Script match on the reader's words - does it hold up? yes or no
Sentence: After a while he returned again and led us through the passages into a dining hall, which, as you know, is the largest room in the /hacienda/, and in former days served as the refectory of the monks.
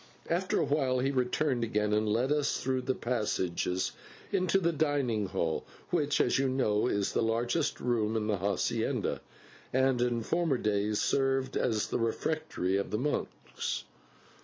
no